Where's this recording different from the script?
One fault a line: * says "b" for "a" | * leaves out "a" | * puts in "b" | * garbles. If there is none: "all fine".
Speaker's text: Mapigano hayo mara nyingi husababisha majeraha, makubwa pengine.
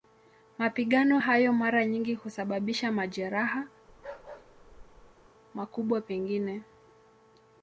all fine